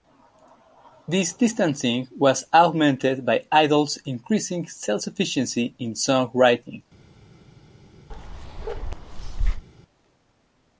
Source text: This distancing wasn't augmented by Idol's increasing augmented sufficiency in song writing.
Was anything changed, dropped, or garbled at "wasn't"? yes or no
yes